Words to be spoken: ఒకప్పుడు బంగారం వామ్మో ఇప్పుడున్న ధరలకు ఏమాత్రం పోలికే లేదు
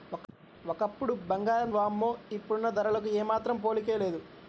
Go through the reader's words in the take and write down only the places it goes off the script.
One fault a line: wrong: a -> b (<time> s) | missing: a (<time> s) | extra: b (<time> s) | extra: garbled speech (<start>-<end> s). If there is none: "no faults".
no faults